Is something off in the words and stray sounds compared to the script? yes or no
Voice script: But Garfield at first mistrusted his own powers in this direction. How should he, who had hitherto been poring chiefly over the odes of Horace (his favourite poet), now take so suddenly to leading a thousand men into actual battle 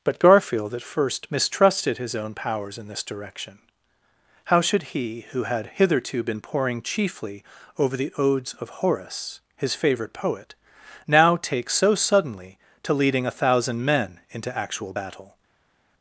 no